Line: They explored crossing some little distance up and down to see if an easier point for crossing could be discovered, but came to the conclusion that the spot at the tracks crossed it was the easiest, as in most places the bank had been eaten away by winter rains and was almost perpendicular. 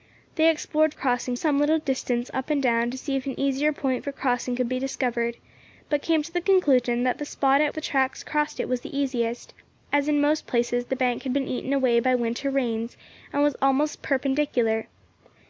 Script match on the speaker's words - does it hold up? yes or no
yes